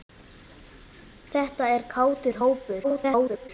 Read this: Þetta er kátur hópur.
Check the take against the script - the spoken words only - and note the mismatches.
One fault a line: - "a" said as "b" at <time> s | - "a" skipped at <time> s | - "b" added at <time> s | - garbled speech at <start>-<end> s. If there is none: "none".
- garbled speech at 2.8-3.5 s